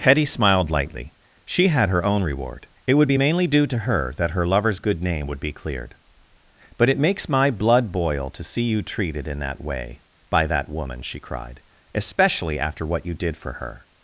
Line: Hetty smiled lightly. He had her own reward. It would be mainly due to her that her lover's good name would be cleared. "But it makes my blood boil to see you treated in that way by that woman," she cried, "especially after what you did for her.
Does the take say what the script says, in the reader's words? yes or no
no